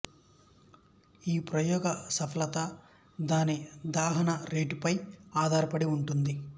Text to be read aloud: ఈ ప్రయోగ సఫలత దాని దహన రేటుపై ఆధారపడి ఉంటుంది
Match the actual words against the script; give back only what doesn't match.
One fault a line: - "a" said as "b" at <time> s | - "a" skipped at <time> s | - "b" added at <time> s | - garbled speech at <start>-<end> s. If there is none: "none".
none